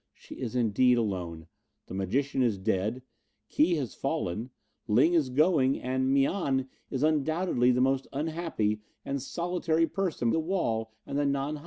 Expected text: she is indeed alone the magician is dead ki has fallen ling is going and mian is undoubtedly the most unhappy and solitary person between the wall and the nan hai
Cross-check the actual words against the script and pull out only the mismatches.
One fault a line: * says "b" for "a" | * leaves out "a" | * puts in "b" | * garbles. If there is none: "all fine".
* leaves out "between"